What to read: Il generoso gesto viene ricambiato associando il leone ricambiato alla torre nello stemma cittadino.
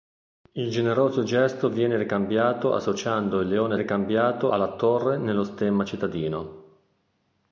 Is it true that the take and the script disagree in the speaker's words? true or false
false